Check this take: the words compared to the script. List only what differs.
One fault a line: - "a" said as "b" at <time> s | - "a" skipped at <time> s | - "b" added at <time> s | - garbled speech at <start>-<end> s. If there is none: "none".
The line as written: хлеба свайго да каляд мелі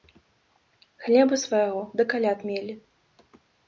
none